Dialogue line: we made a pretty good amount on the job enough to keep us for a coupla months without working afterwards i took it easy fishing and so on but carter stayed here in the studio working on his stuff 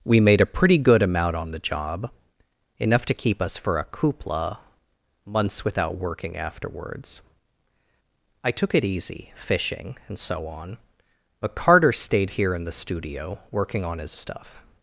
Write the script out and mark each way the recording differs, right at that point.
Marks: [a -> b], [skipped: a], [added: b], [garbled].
we made a pretty good amount on the job enough to keep us for a coupla months without working afterwards i took it easy fishing and so on but carter stayed here in the studio working on his stuff